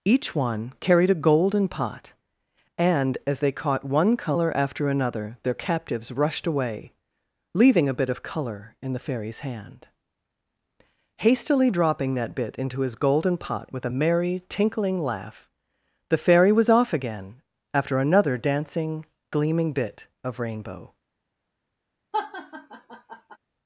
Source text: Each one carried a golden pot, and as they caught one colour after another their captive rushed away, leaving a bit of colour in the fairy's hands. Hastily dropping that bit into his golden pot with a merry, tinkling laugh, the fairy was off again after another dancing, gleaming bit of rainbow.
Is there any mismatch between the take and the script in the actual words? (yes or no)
yes